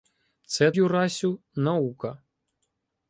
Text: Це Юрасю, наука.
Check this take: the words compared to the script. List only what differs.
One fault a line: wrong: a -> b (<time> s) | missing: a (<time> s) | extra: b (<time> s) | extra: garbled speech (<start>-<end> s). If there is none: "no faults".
no faults